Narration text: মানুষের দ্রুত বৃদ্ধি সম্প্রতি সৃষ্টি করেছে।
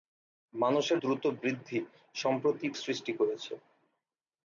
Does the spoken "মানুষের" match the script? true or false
true